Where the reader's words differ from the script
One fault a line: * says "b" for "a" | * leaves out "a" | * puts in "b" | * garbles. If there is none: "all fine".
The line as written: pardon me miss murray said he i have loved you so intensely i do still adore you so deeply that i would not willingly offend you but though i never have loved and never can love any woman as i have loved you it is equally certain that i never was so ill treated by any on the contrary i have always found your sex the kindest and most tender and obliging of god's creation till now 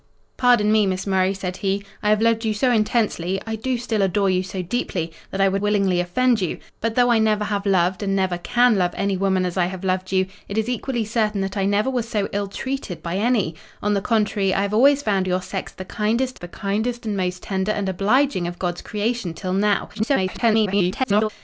* leaves out "not"
* puts in "the kindest"
* garbles